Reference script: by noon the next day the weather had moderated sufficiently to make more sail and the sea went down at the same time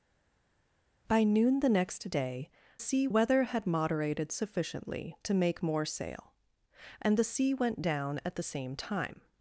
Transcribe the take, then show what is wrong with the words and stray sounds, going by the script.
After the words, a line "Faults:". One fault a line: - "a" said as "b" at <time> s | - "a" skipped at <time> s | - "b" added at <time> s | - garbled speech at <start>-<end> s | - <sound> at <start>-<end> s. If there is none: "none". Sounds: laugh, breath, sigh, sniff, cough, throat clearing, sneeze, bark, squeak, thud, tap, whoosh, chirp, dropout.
by noon the next day sea weather had moderated sufficiently to make more sail and the sea went down at the same time
Faults:
- "the" said as "sea" at 2.8 s